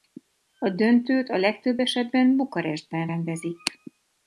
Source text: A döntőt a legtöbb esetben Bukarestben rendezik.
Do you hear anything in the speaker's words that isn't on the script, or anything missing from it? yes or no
no